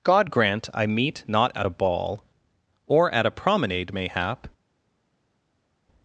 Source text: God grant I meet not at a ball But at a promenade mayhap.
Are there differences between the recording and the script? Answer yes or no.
yes